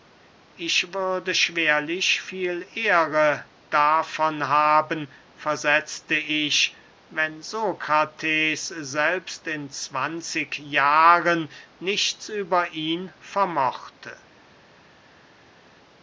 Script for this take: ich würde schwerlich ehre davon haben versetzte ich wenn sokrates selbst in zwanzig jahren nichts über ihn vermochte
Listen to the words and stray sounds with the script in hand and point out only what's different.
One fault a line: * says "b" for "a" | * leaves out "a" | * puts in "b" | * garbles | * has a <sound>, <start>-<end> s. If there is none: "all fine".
* puts in "viel"